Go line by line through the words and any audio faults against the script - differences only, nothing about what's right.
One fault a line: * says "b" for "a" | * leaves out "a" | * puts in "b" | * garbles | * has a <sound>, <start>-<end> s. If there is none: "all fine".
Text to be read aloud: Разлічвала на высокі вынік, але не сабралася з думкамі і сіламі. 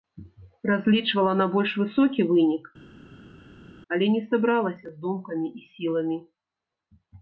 * puts in "больш"